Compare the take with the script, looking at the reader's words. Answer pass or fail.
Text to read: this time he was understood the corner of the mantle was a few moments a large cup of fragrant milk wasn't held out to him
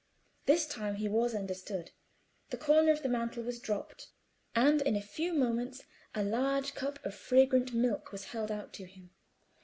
fail